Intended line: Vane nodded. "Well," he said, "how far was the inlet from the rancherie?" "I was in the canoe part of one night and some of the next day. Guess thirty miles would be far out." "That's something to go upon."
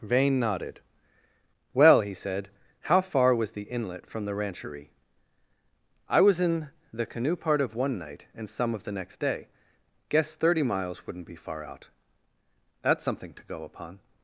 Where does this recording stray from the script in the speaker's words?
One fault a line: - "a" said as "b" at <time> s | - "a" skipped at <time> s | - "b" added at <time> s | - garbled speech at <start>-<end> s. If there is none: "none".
- "would" said as "wouldn't" at 11.1 s